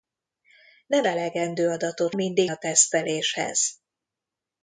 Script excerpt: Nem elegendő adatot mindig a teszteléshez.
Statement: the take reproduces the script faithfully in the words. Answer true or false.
true